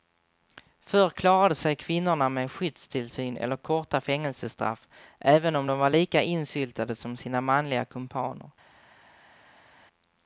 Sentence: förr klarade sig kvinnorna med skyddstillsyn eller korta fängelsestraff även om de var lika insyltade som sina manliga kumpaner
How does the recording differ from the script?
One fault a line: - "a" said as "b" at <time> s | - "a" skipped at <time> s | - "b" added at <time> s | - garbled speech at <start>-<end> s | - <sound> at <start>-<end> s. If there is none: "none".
none